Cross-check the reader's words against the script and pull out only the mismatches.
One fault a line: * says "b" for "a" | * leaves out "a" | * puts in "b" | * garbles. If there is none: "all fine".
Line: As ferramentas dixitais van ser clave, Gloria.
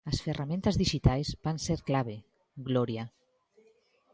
all fine